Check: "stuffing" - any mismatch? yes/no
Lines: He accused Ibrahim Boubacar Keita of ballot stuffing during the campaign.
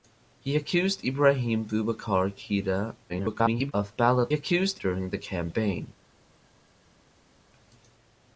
yes